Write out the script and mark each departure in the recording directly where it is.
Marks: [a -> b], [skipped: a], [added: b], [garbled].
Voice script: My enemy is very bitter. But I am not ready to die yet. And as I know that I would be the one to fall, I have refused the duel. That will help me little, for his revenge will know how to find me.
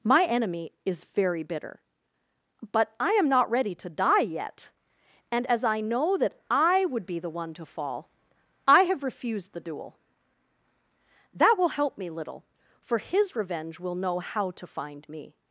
My enemy is very bitter. But I am not ready to die yet. And as I know that I would be the one to fall, I have refused the duel. That will help me little, for his revenge will know how to find me.